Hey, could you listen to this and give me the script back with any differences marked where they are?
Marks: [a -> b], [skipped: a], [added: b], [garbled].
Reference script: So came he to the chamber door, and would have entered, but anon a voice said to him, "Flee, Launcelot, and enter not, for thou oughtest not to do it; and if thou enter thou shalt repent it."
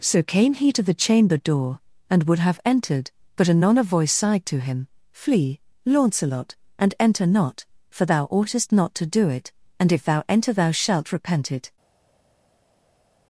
So came he to the chamber door, and would have entered, but anon a voice [said -> sighed] to him, "Flee, Launcelot, and enter not, for thou oughtest not to do it; and if thou enter thou shalt repent it."